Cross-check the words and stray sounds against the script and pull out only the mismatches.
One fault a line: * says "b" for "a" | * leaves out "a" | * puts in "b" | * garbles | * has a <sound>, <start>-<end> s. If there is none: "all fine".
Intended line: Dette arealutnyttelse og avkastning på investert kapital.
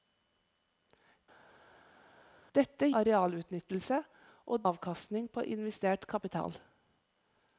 all fine